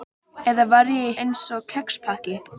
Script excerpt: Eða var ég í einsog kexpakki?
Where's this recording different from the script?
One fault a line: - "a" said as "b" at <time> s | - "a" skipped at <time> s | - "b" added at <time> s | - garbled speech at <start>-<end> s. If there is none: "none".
none